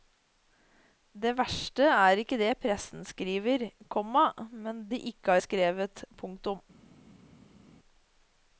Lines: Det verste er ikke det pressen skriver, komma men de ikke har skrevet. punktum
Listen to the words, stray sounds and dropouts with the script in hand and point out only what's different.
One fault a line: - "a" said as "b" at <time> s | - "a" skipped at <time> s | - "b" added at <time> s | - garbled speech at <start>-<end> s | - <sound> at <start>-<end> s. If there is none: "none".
none